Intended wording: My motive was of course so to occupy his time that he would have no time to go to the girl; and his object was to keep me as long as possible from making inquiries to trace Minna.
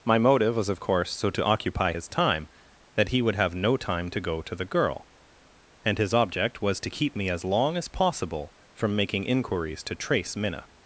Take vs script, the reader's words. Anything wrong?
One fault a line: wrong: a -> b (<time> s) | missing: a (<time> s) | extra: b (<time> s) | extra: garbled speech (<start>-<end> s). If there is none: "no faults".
no faults